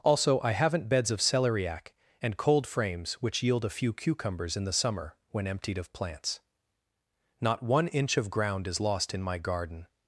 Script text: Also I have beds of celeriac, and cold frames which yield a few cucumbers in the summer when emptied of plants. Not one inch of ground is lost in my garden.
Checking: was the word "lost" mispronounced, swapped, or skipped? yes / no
no